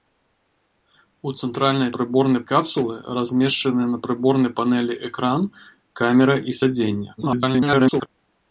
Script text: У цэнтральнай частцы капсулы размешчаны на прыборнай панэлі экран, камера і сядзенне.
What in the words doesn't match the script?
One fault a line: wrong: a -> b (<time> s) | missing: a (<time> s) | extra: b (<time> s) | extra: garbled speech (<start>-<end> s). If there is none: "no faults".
wrong: частцы -> прыборнай (2.0 s)
extra: garbled speech (7.2-8.1 s)